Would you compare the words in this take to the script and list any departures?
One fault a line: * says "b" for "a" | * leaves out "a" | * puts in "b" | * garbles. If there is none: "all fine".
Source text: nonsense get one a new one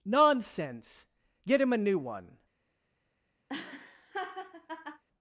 * says "him" for "one"